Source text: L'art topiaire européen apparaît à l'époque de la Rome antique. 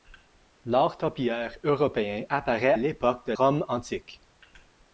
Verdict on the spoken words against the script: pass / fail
fail